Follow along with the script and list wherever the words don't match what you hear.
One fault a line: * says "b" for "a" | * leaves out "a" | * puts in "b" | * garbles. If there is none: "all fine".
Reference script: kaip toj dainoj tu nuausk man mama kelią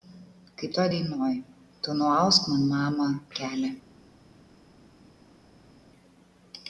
all fine